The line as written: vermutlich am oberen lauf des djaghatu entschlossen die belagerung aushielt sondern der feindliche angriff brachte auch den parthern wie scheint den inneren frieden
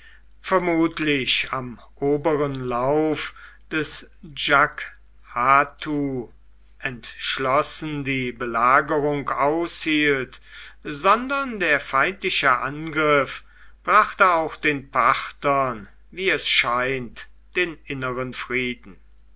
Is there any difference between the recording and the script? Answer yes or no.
yes